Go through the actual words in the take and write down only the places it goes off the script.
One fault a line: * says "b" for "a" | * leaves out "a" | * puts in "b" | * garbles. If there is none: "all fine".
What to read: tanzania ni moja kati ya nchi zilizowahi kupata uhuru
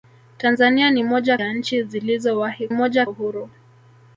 * leaves out "kati"
* says "moja" for "kupata"